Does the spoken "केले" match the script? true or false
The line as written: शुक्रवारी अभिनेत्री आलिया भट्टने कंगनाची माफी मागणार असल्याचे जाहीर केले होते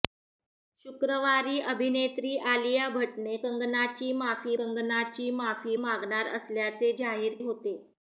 false